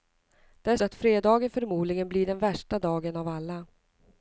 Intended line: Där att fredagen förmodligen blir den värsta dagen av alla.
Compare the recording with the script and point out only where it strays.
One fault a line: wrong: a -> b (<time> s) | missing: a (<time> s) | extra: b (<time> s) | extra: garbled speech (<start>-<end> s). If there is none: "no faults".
no faults